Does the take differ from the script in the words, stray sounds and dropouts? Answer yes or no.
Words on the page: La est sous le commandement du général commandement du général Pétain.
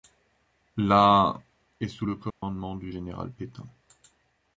yes